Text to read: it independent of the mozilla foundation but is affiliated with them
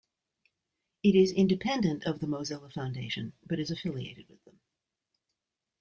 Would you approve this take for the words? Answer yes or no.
no